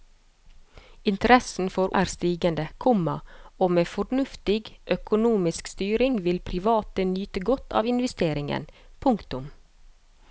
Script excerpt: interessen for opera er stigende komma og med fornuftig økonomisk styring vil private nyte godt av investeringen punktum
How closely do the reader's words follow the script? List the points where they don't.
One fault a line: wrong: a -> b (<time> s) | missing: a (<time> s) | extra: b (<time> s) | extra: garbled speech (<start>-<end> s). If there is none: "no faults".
missing: opera (1.9 s)